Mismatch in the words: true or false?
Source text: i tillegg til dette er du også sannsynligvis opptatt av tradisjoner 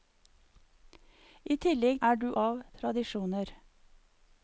true